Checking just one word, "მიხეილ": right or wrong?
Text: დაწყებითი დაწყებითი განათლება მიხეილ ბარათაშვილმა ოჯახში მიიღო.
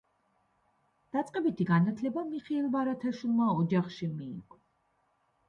right